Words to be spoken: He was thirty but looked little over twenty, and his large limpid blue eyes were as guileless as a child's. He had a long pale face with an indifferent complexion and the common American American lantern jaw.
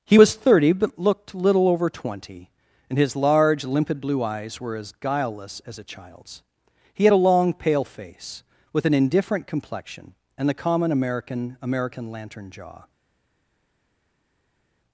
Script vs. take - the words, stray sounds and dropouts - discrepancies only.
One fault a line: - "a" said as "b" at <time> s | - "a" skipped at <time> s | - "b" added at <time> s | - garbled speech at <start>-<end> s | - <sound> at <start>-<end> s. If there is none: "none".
none